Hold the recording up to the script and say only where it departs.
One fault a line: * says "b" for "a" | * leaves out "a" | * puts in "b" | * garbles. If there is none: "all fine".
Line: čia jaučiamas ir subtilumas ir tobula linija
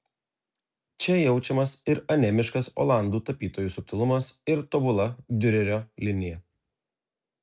* puts in "anemiškas olandų tapytojų"
* puts in "diurerio"